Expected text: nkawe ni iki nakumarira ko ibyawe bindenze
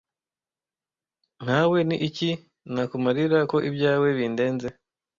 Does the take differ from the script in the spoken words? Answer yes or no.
no